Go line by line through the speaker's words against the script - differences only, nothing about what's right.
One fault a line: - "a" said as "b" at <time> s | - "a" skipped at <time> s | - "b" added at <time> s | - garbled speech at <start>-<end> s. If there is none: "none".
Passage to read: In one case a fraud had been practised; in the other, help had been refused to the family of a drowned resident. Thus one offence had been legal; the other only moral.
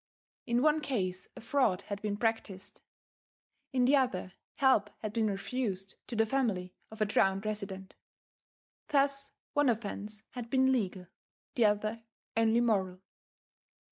none